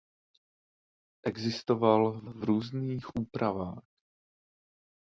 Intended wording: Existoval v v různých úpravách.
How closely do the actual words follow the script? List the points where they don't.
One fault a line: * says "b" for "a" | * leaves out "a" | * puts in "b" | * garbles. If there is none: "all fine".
all fine